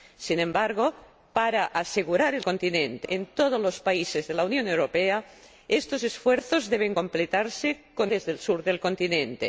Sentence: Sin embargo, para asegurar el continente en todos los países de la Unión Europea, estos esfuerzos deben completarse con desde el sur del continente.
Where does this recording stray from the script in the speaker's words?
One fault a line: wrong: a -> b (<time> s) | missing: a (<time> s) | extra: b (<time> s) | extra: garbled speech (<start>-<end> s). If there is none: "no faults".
no faults